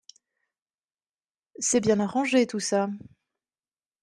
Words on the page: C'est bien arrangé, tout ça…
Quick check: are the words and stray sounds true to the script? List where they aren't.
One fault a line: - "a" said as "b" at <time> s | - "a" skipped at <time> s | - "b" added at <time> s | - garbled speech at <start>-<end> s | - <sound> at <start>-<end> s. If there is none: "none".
none